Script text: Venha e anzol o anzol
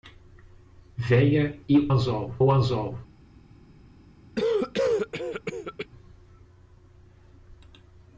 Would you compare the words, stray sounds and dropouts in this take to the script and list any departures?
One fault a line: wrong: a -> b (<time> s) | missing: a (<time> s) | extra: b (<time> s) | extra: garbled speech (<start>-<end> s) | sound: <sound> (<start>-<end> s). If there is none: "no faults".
sound: cough (4.3-5.9 s)